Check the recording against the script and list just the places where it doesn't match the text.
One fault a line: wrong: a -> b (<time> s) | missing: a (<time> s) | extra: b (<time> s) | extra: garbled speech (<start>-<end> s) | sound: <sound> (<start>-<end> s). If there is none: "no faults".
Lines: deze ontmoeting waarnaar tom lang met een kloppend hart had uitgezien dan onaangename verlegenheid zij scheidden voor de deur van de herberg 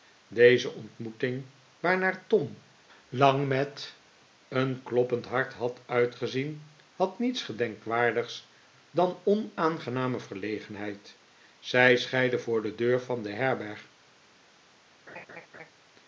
extra: had niets gedenkwaardigs (6.9 s)
sound: laugh (15.1-15.7 s)